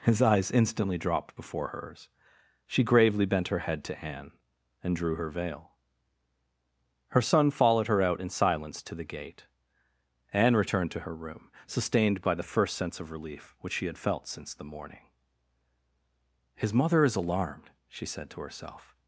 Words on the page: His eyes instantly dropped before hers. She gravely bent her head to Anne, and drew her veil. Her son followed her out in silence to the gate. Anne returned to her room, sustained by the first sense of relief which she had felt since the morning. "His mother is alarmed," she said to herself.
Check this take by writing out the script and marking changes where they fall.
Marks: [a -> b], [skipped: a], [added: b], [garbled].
His eyes instantly dropped before hers. She gravely bent her head to Anne, and drew her veil. Her son followed her out in silence to the gate. Anne returned to her room, sustained by the first sense of relief which she had felt since the morning. "His mother is alarmed," she said to herself.